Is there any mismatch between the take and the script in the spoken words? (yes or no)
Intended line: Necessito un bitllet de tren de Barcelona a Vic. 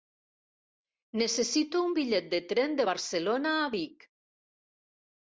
no